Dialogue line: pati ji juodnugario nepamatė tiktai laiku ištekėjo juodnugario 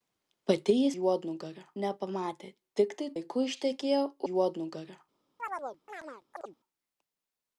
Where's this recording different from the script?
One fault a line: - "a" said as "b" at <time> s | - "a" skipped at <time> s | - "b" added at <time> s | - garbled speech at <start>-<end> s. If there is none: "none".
none